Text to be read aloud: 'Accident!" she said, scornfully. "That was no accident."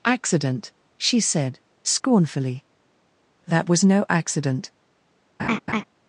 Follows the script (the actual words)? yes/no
yes